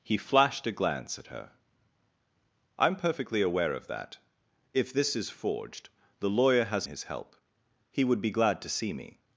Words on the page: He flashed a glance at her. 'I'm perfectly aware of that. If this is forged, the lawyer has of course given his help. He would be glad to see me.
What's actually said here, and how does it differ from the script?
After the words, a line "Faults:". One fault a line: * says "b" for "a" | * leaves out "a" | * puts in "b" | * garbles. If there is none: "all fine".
He flashed a glance at her. 'I'm perfectly aware of that. If this is forged, the lawyer has his help. He would be glad to see me.
Faults:
* leaves out "of course given"